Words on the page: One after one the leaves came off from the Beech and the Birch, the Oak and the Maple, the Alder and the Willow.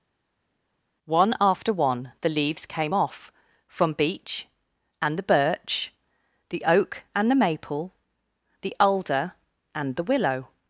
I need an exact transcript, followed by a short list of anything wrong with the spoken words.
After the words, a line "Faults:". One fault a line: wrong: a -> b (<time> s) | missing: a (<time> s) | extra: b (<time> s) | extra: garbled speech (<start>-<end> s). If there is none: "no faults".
One after one the leaves came off from Beech and the Birch, the Oak and the Maple, the Alder and the Willow.
Faults:
missing: the (3.9 s)